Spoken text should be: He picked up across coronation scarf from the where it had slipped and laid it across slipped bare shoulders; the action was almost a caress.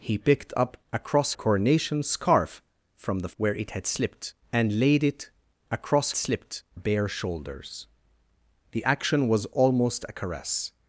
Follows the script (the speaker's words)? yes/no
yes